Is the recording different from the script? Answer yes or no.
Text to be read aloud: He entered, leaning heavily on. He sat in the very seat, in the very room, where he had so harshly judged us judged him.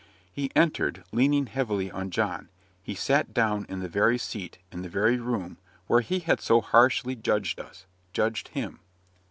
yes